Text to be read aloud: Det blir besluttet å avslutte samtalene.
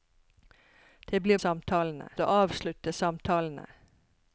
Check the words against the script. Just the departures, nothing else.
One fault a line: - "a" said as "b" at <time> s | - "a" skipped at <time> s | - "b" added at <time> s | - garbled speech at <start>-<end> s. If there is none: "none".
- "besluttet" said as "samtalene" at 1.4 s